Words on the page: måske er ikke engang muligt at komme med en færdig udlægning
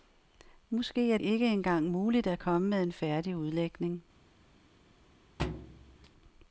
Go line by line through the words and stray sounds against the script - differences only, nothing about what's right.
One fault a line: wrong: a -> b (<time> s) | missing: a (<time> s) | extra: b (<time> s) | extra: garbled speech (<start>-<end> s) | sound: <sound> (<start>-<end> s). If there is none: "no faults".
sound: thud (5.4-6.1 s)